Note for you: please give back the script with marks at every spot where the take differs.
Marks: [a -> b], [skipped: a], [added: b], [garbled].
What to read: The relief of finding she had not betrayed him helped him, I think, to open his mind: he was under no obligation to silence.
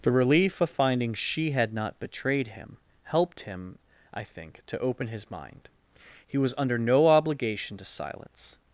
The relief of finding she had not betrayed him helped him, I think, to open his mind: he was under no obligation to silence.